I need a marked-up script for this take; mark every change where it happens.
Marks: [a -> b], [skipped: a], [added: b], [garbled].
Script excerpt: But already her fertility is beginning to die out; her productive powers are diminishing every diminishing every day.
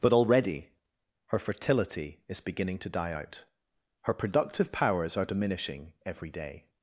But already her fertility is beginning to die out; her productive powers are diminishing every [skipped: diminishing every] day.